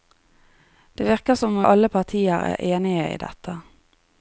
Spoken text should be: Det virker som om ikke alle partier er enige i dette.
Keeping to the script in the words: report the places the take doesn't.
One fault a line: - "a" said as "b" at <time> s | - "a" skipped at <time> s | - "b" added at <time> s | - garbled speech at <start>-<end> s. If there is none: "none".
- "ikke" skipped at 1.7 s